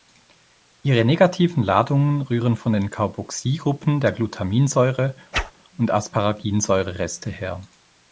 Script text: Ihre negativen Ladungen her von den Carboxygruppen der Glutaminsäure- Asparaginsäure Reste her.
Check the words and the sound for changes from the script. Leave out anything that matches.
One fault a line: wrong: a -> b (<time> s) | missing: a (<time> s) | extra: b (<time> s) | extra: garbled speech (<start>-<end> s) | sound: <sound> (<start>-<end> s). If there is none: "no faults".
wrong: her -> rühren (2.2 s)
sound: whoosh (5.3-5.5 s)
extra: und (5.8 s)